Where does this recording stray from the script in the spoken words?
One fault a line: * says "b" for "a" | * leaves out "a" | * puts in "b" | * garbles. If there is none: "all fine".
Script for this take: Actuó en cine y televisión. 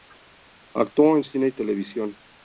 all fine